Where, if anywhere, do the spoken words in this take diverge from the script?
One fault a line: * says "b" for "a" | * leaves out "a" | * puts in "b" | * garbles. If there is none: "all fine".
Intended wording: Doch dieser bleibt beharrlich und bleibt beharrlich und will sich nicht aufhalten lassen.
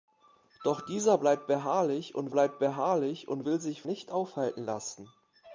all fine